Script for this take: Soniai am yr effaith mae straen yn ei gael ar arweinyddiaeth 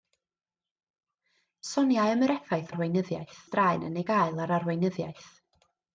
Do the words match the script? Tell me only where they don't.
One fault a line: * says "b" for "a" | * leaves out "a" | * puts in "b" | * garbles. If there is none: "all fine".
* says "arweinyddiaeth" for "mae"